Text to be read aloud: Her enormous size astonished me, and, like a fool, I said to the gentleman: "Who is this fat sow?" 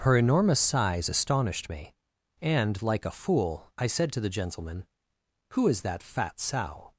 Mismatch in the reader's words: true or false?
true